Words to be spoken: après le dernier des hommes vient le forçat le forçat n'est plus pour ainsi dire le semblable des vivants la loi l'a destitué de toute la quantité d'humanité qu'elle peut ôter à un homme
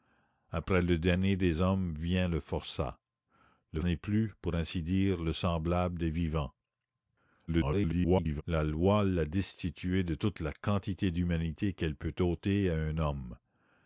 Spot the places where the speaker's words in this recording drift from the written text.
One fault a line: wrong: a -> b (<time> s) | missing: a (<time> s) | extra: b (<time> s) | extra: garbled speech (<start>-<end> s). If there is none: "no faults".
missing: forçat (3.8 s)
extra: garbled speech (7.5-8.4 s)